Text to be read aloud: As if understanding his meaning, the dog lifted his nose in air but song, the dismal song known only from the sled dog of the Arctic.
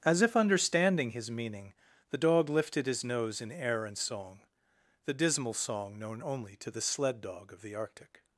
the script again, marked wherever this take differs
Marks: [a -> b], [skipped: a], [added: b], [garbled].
As if understanding his meaning, the dog lifted his nose in air [but -> and] song, the dismal song known only [from -> to] the sled dog of the Arctic.